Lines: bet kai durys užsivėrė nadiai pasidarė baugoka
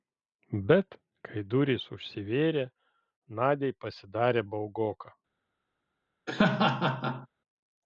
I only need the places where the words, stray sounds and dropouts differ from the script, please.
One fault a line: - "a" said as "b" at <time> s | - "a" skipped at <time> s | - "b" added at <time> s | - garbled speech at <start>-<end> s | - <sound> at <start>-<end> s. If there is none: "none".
- laugh at 6.3-7.3 s